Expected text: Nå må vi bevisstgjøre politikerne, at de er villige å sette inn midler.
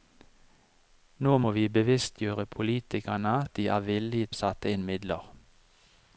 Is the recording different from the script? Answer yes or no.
no